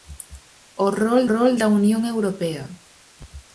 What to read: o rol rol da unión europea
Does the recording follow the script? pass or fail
pass